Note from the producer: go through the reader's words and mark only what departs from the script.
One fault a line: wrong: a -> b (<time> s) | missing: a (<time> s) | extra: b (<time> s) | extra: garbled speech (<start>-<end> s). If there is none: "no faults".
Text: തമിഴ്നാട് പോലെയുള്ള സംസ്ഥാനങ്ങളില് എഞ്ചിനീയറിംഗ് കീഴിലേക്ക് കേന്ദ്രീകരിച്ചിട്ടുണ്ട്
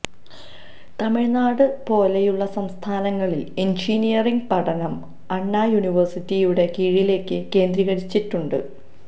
extra: പഠനം അണ്ണാ യൂണിവേഴ്സിറ്റിയുടെ (4.5 s)